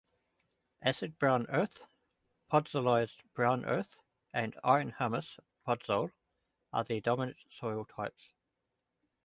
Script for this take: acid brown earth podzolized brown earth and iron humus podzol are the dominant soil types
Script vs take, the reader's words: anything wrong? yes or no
no